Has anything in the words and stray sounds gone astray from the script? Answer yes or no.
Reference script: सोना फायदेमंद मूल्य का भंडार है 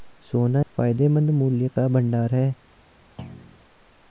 yes